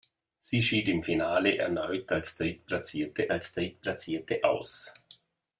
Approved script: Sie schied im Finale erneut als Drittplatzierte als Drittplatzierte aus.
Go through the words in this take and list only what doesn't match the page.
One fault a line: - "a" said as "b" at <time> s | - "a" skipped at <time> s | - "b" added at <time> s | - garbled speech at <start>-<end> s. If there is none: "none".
none